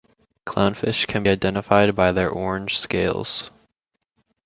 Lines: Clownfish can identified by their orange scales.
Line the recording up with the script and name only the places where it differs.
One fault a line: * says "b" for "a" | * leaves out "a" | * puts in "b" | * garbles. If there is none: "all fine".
all fine